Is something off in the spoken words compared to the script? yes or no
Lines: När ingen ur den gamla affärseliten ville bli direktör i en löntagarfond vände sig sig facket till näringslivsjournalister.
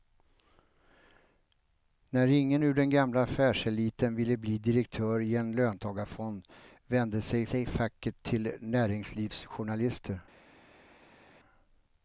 no